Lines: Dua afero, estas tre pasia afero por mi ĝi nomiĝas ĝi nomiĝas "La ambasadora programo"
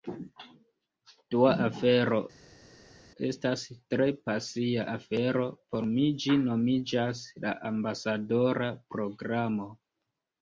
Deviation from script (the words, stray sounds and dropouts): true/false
true